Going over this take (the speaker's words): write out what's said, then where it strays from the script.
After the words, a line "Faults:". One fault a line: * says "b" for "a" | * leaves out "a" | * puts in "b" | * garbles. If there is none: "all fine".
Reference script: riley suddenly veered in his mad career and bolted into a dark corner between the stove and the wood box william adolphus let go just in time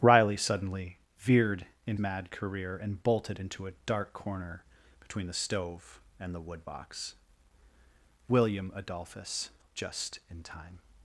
riley suddenly veered in mad career and bolted into a dark corner between the stove and the wood box william adolphus just in time
Faults:
* leaves out "his"
* leaves out "let go"